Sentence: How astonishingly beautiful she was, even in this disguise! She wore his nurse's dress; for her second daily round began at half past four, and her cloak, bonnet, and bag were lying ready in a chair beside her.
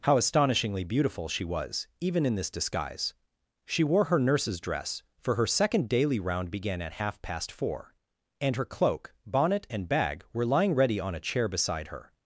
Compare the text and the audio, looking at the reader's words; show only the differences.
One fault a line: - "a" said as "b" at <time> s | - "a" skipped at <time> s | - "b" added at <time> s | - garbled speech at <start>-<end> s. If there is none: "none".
- "his" said as "her" at 4.0 s
- "in" said as "on" at 11.0 s